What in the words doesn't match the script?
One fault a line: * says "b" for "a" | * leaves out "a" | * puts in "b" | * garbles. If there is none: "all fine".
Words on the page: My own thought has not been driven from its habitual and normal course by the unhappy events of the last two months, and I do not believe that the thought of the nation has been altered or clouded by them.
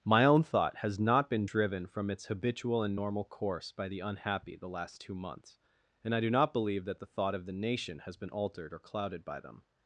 * leaves out "events of"